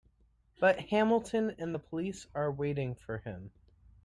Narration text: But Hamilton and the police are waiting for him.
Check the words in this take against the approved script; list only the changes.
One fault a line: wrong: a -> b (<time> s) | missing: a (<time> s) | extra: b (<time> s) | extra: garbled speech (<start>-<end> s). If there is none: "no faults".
no faults